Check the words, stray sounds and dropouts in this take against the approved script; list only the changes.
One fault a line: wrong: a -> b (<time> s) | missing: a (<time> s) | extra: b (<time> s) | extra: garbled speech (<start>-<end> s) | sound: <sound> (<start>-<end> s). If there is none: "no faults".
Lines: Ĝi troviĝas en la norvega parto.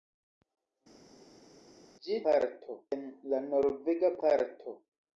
wrong: troviĝas -> parto (2.3 s)